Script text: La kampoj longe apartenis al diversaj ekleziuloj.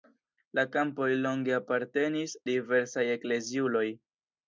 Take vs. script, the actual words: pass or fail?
fail